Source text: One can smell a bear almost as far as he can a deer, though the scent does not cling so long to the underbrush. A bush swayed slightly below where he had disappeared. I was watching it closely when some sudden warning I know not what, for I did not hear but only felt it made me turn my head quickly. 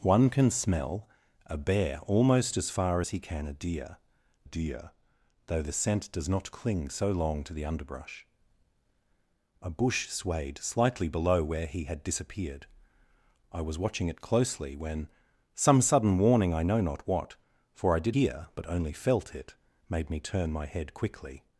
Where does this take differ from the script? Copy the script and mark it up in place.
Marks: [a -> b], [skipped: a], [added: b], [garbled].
One can smell a bear almost as far as he can a deer, [added: deer] though the scent does not cling so long to the underbrush. A bush swayed slightly below where he had disappeared. I was watching it closely when some sudden warning I know not what, for I did [skipped: not] hear but only felt it made me turn my head quickly.